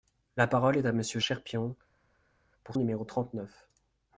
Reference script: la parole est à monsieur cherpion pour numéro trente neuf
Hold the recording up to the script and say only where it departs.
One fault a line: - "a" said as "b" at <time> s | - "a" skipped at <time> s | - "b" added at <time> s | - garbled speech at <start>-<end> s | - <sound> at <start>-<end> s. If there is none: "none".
none